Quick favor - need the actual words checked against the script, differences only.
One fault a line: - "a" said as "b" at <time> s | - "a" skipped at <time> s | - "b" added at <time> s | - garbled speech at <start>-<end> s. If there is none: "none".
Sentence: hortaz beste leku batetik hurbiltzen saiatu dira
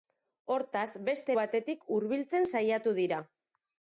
- "leku" skipped at 1.4 s